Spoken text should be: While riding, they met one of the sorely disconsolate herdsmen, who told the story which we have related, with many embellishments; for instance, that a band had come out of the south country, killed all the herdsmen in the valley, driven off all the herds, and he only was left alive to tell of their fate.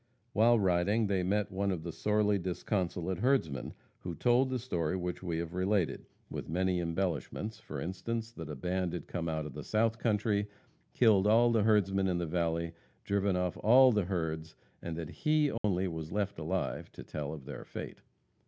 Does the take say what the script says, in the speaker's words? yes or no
no